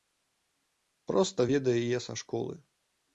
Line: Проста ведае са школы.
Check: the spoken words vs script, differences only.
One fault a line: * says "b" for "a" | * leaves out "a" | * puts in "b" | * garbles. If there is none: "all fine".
* puts in "яе"